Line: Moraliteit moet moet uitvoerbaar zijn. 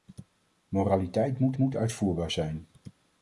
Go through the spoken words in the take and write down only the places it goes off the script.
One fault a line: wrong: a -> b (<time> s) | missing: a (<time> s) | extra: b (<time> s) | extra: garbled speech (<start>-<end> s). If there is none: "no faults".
no faults